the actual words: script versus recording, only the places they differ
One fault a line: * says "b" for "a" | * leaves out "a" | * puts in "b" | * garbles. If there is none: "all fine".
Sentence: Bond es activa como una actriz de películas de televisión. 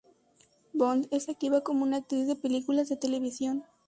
all fine